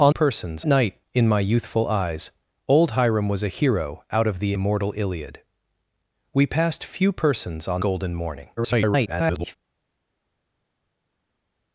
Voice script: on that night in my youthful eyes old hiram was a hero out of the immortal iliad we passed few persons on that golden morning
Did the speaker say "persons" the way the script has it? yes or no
yes